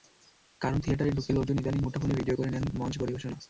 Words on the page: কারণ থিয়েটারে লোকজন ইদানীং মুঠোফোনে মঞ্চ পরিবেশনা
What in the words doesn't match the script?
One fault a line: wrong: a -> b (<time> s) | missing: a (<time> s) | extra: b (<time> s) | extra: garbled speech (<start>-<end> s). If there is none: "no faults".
extra: ঢুকে (1.1 s)
extra: ভিডিও করে নেন (2.1 s)